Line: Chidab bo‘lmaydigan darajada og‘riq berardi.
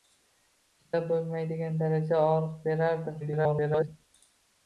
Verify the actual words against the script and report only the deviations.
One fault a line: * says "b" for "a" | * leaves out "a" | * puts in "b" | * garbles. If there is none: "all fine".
* garbles